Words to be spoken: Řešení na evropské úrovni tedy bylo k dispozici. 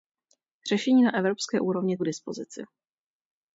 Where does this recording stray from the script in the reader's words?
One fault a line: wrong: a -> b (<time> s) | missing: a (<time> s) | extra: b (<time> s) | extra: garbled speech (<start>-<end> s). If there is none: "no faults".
missing: tedy bylo (2.0 s)